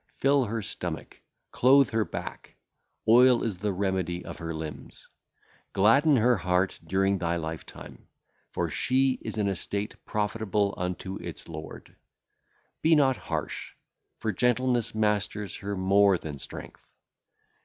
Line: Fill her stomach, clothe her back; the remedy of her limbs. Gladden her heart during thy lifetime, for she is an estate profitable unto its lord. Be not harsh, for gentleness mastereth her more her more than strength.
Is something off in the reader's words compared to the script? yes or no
yes